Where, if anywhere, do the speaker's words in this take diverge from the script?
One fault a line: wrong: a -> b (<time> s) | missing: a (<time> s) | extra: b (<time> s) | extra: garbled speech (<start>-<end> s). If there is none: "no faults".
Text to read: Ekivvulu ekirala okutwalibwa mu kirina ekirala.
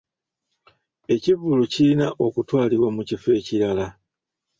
wrong: ekirala -> kirina (1.7 s)
wrong: kirina -> kifo (3.1 s)